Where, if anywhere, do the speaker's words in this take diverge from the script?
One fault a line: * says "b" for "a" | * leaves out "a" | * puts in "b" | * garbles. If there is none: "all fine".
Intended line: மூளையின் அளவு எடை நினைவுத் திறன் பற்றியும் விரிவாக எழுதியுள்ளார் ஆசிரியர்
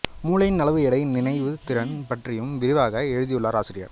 all fine